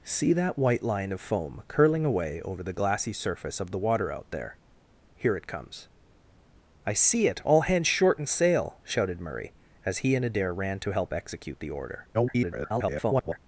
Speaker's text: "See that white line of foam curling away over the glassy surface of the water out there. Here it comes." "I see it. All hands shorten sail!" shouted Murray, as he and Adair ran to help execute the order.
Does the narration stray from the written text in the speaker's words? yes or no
yes